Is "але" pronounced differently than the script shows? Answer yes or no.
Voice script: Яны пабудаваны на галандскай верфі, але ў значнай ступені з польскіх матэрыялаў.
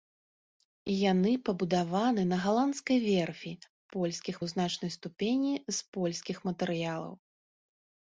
yes